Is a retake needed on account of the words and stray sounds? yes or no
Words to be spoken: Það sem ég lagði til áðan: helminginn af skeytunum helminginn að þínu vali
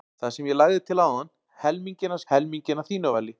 yes